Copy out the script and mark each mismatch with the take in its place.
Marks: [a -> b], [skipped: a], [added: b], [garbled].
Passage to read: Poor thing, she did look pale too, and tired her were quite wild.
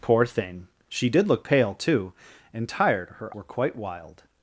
Poor thing, she did look pale too, and tired her were quite wild.